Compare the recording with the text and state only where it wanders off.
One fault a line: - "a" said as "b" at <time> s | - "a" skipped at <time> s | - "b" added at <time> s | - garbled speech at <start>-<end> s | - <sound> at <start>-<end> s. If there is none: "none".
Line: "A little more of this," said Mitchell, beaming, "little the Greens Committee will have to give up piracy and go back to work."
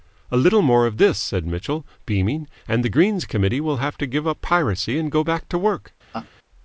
- "little" said as "and" at 2.7 s
- laugh at 6.1-6.3 s